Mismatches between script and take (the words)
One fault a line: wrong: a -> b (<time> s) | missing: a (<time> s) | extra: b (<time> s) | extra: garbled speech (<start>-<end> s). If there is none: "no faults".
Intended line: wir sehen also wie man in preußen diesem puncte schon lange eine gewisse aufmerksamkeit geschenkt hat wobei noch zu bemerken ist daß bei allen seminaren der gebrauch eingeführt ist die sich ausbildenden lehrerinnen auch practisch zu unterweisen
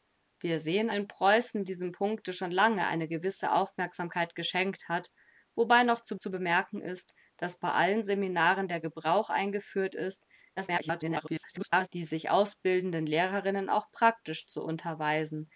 missing: also wie man (0.9 s)
extra: zu (6.2 s)
extra: garbled speech (10.6-11.9 s)